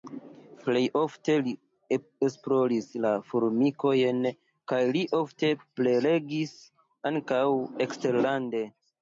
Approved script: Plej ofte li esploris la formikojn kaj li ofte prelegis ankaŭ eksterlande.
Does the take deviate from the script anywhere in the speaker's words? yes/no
no